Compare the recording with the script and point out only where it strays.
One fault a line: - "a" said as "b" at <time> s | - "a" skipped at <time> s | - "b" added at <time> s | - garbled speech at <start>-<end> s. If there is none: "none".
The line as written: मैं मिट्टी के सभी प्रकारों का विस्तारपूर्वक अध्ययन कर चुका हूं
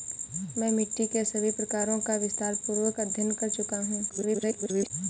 - garbled speech at 4.1-4.9 s